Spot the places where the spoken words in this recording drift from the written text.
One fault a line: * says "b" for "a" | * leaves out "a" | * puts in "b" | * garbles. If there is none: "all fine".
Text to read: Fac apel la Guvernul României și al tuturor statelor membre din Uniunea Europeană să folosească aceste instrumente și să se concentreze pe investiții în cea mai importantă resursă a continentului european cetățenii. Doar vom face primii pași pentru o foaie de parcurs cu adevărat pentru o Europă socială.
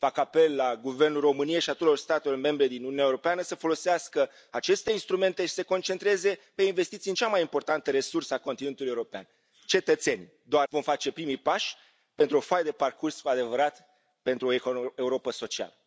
all fine